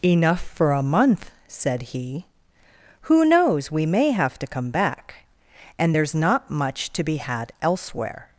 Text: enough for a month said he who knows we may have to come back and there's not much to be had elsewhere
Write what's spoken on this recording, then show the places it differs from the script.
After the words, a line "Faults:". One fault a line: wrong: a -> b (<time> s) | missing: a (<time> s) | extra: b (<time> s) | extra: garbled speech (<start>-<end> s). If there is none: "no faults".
enough for a month said he who knows we may have to come back and there's not much to be had elsewhere
Faults:
no faults